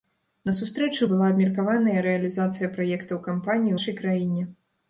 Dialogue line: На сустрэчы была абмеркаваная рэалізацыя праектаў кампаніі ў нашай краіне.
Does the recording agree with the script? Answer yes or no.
no